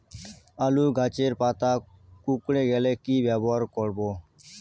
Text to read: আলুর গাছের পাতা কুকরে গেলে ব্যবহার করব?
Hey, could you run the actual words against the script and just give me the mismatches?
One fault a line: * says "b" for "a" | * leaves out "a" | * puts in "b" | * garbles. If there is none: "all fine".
* puts in "কি"